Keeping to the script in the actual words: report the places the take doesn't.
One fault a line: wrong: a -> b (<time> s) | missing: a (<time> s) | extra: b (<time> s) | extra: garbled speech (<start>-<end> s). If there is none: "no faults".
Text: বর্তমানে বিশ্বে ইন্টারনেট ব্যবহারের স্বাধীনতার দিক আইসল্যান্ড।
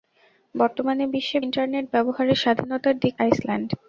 no faults